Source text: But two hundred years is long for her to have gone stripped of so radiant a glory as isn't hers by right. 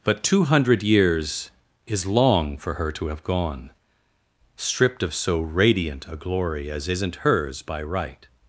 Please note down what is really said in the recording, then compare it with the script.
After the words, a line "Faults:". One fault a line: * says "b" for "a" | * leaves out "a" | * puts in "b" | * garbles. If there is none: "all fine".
But two hundred years is long for her to have gone stripped of so radiant a glory as isn't hers by right.
Faults:
all fine